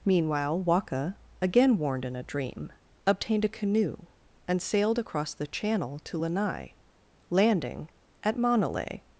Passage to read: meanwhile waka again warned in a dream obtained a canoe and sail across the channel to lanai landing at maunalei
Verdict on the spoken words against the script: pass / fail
fail